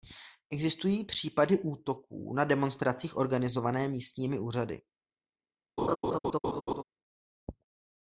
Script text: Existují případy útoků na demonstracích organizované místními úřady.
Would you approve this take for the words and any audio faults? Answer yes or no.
no